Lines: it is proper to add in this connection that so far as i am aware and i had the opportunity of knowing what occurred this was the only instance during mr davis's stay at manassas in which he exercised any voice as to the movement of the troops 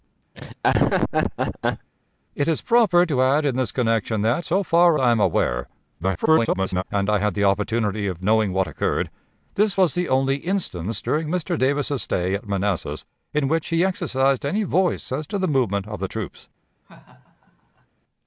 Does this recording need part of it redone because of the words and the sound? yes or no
yes